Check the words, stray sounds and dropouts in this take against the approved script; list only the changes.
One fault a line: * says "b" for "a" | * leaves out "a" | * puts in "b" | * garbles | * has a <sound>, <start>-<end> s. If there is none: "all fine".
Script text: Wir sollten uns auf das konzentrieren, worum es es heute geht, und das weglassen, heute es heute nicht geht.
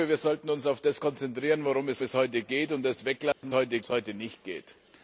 * has a dropout, 3.3-3.4 s